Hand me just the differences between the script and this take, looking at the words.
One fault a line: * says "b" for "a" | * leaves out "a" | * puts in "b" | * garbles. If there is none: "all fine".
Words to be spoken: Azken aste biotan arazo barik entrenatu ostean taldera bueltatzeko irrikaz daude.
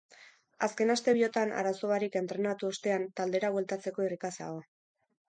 * says "dago" for "daude"